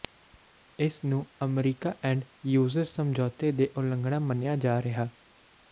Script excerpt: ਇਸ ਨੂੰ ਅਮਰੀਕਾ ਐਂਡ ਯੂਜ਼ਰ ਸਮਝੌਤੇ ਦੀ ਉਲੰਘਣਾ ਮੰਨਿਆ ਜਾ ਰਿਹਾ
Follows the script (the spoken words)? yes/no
yes